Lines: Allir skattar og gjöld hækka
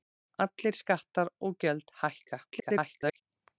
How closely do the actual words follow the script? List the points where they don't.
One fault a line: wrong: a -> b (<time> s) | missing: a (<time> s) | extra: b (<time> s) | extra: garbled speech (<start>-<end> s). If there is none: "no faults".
extra: garbled speech (2.5-3.2 s)